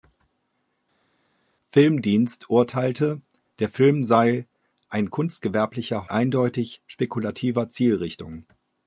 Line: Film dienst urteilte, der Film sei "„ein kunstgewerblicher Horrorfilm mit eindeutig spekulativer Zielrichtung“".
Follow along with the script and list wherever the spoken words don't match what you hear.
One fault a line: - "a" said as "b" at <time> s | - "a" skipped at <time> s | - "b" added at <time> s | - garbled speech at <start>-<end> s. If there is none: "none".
- "Horrorfilm mit" skipped at 6.1 s